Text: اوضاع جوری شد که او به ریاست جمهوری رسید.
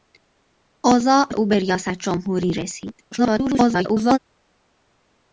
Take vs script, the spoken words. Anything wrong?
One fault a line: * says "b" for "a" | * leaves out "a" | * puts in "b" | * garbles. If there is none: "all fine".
* leaves out "جوری شد که"
* garbles